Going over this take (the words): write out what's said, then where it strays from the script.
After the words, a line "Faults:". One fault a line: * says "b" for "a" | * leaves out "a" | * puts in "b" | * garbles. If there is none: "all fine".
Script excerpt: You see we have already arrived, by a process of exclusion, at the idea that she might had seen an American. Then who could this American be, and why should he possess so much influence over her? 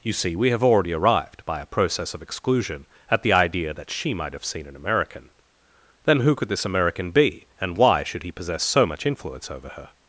You see we have already arrived, by a process of exclusion, at the idea that she might have seen an American. Then who could this American be, and why should he possess so much influence over her?
Faults:
* says "have" for "had"